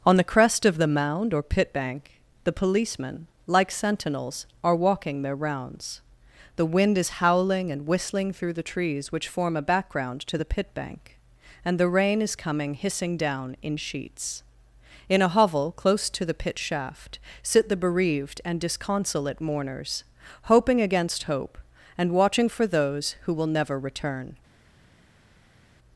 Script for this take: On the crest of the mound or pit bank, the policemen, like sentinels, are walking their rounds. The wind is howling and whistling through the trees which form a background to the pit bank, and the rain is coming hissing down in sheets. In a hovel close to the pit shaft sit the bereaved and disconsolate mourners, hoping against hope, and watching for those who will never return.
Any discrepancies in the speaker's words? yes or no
no